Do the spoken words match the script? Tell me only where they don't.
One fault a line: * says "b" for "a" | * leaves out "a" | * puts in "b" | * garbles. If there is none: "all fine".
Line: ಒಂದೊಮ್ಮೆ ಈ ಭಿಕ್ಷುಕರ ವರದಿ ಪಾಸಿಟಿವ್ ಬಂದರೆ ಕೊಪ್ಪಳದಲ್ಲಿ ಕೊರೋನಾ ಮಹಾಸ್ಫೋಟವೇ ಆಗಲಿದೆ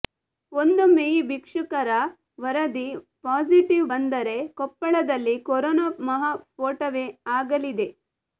all fine